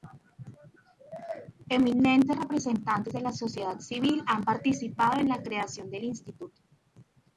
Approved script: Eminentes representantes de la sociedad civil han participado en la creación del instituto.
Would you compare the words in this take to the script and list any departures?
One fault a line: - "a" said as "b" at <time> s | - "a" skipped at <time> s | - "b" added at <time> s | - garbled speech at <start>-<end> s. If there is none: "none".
none